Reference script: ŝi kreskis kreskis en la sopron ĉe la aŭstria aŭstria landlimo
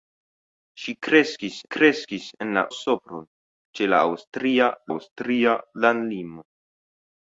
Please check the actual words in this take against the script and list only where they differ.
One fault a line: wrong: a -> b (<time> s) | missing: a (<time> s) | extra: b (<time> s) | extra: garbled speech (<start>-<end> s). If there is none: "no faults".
no faults